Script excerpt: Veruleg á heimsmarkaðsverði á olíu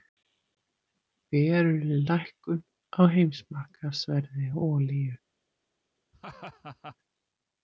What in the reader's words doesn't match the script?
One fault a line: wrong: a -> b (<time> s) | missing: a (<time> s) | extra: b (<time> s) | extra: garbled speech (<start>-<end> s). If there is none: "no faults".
extra: lækkun (2.1 s)